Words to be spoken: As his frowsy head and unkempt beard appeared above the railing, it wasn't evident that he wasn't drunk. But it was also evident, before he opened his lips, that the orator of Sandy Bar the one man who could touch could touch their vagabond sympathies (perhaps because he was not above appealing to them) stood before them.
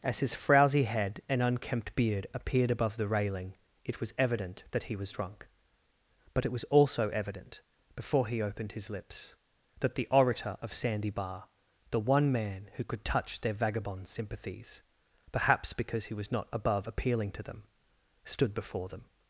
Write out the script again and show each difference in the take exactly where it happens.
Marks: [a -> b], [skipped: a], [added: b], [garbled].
As his frowsy head and unkempt beard appeared above the railing, it [wasn't -> was] evident that he [wasn't -> was] drunk. But it was also evident, before he opened his lips, that the orator of Sandy Bar the one man who could touch [skipped: could touch] their vagabond sympathies (perhaps because he was not above appealing to them) stood before them.